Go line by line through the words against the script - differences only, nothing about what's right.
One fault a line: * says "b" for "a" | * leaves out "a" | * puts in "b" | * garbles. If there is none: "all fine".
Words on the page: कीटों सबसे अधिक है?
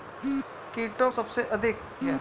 all fine